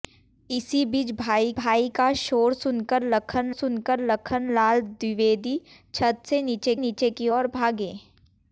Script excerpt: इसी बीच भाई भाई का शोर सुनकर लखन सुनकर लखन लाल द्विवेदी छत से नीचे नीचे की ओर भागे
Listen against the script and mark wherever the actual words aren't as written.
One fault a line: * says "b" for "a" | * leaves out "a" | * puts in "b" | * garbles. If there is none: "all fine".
all fine